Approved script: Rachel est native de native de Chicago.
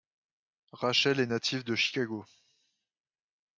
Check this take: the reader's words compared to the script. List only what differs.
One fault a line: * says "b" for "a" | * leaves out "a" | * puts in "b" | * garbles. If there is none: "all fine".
* leaves out "native de"